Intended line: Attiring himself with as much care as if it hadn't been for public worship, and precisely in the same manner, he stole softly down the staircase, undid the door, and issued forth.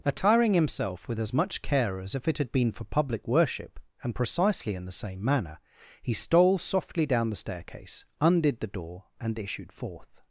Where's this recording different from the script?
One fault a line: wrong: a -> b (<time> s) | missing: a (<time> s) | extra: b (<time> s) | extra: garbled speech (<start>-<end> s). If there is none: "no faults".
wrong: hadn't -> had (2.4 s)